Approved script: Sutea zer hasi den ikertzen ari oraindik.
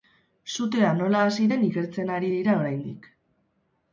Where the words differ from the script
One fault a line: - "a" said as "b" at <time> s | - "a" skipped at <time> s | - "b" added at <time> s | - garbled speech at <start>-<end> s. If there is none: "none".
- "zer" said as "nola" at 1.0 s
- "dira" added at 2.3 s